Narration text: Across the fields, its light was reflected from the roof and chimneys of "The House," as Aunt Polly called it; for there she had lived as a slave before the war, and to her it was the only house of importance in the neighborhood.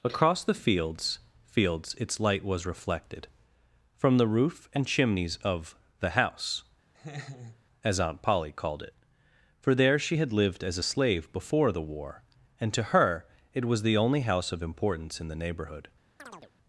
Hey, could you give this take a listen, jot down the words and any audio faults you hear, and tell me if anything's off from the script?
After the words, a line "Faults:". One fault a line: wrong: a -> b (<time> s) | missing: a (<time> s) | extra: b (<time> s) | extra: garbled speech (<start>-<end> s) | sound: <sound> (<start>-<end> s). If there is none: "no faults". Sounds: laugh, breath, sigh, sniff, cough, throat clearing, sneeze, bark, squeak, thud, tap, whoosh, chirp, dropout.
Across the fields fields, its light was reflected from the roof and chimneys of "The House," as Aunt Polly called it; for there she had lived as a slave before the war, and to her it was the only house of importance in the neighborhood.
Faults:
extra: fields (1.4 s)
sound: laugh (6.9-7.6 s)
sound: chirp (16.2-16.5 s)